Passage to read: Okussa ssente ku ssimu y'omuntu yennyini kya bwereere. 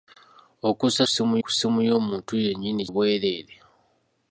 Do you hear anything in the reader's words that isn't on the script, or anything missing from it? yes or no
yes